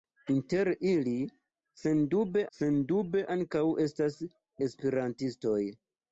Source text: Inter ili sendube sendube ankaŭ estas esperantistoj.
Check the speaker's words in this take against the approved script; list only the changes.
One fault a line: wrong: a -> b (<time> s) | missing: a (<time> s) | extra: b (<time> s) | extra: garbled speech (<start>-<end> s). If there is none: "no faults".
no faults